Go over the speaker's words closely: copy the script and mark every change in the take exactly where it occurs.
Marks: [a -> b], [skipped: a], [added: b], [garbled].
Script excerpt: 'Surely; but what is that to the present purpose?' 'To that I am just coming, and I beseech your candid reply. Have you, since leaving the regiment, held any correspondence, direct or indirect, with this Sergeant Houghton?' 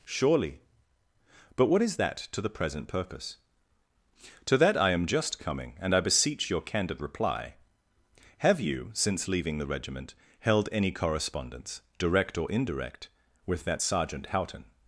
'Surely; but what is that to the present purpose?' 'To that I am just coming, and I beseech your candid reply. Have you, since leaving the regiment, held any correspondence, direct or indirect, with [this -> that] Sergeant Houghton?'